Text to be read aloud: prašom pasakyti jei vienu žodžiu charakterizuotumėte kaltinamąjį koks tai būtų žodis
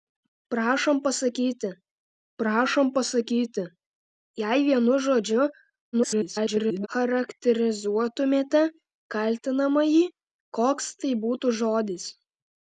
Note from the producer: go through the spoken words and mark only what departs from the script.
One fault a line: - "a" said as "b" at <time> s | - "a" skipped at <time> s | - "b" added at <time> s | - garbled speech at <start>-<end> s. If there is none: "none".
- "prašom pasakyti" added at 2.4 s
- garbled speech at 5.9-6.9 s